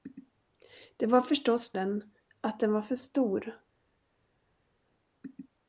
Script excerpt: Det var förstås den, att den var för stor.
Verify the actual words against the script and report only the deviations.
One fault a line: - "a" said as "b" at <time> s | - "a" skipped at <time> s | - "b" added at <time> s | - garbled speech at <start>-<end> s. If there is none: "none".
none